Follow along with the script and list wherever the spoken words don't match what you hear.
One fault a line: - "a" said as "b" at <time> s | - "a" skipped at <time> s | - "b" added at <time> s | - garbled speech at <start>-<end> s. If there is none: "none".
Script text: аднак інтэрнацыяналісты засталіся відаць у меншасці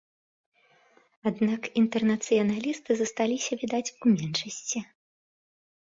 none